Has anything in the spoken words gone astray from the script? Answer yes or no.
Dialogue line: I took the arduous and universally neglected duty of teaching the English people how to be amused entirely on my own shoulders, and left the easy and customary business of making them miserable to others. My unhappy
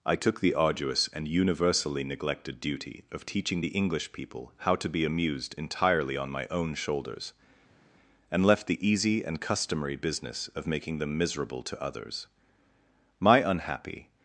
no